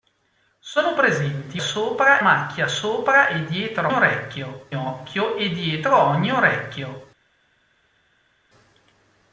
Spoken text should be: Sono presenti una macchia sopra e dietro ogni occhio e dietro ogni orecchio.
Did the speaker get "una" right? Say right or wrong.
wrong